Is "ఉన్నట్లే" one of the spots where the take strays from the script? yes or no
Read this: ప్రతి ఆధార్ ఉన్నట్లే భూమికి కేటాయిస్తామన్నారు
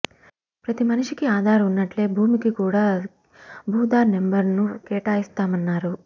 no